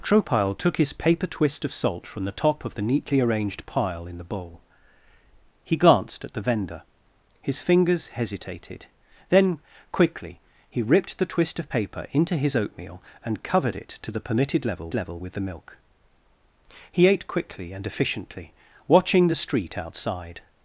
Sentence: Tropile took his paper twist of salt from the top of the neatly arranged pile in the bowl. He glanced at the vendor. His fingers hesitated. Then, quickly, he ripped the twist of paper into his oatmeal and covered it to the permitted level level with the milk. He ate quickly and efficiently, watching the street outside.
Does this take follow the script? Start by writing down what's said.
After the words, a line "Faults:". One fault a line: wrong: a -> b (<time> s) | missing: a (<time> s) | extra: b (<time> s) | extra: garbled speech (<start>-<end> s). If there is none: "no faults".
Tropile took his paper twist of salt from the top of the neatly arranged pile in the bowl. He glanced at the vendor. His fingers hesitated. Then, quickly, he ripped the twist of paper into his oatmeal and covered it to the permitted level level with the milk. He ate quickly and efficiently, watching the street outside.
Faults:
no faults